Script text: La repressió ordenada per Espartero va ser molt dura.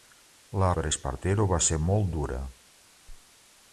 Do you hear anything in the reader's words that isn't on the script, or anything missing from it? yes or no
yes